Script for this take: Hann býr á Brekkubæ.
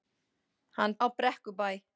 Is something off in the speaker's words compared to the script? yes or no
yes